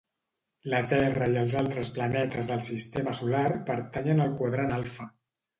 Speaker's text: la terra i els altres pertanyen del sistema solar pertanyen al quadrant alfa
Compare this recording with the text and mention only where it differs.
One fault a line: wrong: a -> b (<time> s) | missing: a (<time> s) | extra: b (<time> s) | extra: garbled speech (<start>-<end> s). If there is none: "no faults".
wrong: pertanyen -> planetes (2.0 s)